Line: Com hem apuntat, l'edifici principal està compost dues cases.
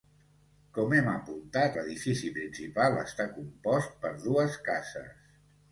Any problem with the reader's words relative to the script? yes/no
yes